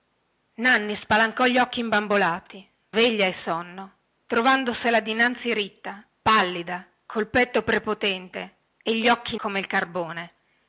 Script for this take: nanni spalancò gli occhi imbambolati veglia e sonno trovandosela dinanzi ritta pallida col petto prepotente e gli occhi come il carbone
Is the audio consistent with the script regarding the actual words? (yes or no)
yes